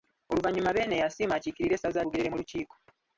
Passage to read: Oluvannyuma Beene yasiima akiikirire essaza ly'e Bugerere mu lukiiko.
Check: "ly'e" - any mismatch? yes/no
yes